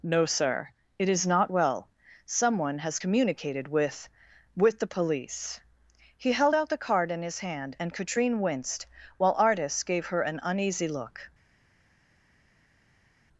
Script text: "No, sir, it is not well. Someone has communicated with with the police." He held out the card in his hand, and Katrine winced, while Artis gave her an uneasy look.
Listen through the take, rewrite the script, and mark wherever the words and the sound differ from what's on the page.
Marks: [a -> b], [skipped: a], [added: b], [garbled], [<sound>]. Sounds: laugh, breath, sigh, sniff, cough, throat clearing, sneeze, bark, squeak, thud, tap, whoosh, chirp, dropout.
"No, sir, it is not well. Someone has communicated with with the police." He held out the card in his hand, and Katrine winced, while Artis gave her an uneasy look.